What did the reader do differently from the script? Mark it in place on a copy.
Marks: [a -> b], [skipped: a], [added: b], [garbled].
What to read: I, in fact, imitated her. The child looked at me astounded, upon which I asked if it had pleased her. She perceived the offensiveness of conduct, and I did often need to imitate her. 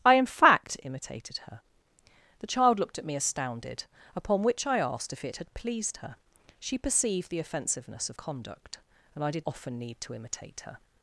I, in fact, imitated her. The child looked at me astounded, upon which I asked if it had pleased her. She perceived the offensiveness of conduct, and I did often need to imitate her.